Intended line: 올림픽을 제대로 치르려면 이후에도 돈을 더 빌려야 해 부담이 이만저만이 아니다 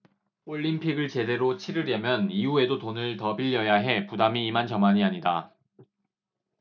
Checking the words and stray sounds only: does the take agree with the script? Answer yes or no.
yes